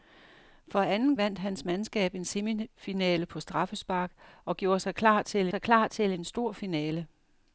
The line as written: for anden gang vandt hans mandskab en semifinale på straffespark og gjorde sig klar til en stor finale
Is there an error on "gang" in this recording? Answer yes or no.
yes